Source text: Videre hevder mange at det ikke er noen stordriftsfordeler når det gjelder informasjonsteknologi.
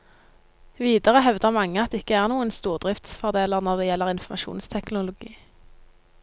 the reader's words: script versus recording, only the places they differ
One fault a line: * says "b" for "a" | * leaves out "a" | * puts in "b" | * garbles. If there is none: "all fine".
all fine